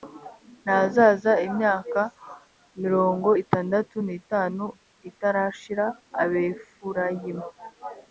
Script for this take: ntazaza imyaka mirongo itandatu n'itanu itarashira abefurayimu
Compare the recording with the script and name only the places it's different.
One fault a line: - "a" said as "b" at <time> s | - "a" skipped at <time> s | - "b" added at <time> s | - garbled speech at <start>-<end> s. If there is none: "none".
none